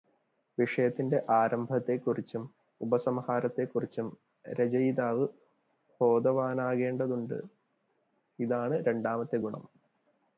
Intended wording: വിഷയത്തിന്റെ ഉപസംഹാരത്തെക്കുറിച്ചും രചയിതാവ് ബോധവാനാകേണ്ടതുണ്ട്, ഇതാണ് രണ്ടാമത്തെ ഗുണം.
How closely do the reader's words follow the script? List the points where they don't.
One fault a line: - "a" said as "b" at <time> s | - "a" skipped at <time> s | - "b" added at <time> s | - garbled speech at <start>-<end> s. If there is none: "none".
- "ആരംഭത്തെക്കുറിച്ചും" added at 1.3 s